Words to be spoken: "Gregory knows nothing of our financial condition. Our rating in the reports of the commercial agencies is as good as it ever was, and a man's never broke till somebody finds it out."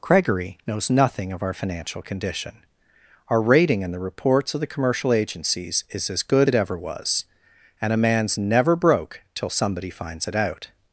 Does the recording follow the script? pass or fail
fail